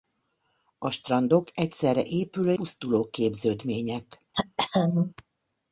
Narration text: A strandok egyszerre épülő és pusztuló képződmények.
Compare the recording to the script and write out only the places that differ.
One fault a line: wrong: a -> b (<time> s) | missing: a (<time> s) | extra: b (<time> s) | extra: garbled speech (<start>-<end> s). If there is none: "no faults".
missing: és (2.5 s)